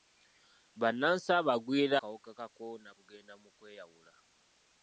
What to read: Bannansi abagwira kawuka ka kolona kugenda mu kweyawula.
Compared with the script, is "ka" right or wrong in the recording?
right